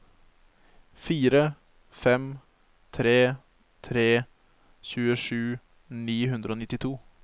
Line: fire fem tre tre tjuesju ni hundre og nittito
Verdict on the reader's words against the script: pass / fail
pass